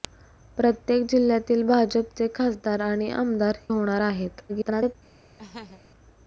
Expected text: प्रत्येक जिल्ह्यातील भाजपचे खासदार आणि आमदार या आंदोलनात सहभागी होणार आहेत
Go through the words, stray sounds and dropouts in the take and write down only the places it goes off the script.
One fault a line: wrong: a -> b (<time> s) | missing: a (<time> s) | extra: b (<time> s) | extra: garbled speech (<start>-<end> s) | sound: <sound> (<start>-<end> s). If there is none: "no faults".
missing: या आंदोलनात सहभागी (3.6 s)
extra: garbled speech (4.5-4.9 s)
sound: laugh (5.4-5.8 s)